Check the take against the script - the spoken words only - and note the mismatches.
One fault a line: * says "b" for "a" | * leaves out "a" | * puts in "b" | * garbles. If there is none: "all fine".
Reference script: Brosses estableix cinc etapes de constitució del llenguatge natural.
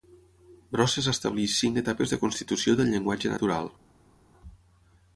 all fine